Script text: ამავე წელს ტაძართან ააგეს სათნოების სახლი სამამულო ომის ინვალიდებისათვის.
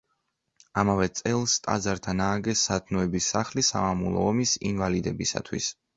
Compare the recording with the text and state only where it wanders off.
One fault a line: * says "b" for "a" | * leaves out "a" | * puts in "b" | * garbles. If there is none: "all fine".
all fine